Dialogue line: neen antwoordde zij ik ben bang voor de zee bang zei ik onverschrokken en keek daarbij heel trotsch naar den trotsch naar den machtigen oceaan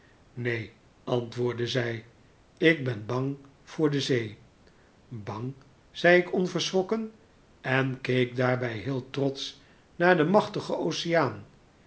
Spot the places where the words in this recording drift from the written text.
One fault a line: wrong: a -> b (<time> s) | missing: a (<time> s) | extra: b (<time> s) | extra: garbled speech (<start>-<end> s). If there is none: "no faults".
missing: trotsch naar den (10.3 s)